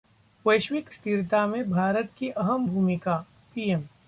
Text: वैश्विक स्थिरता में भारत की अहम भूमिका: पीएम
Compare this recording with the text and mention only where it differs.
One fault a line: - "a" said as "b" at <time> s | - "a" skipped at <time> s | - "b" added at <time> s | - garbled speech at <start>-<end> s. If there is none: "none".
none